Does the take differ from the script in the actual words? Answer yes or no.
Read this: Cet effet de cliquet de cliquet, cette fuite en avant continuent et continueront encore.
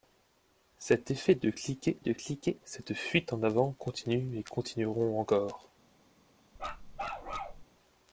no